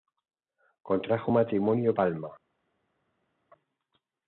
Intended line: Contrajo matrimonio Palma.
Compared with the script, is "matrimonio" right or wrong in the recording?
right